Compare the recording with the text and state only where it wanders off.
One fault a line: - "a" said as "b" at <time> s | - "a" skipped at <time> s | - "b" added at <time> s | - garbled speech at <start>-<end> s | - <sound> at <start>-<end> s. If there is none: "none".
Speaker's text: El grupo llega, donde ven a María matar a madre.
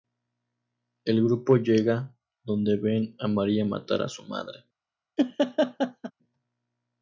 - "su" added at 4.1 s
- laugh at 5.2-6.1 s